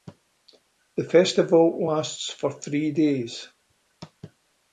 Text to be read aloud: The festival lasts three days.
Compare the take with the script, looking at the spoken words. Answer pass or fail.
fail